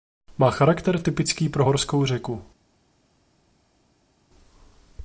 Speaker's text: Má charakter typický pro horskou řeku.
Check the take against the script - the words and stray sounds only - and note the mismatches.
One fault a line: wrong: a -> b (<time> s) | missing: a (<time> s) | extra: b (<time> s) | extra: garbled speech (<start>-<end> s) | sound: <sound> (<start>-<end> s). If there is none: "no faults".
no faults